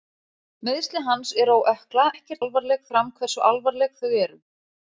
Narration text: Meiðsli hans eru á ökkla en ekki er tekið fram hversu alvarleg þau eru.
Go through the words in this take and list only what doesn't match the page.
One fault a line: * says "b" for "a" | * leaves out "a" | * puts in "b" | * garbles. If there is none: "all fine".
* leaves out "en"
* says "alvarleg" for "tekið"